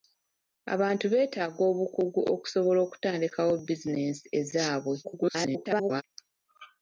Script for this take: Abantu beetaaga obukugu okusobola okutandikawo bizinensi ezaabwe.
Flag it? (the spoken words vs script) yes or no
yes